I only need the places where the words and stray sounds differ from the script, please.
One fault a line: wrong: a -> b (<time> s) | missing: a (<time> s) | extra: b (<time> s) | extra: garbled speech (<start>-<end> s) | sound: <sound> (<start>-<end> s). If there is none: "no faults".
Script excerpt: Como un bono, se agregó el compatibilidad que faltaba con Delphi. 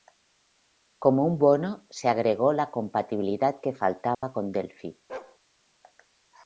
wrong: el -> la (2.5 s)
sound: dropout (4.1-4.2 s)
sound: bark (5.1-5.4 s)